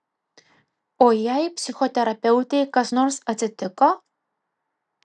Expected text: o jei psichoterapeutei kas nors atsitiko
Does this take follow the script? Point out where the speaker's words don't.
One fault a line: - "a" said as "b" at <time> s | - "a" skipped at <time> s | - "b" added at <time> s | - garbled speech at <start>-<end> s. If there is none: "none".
none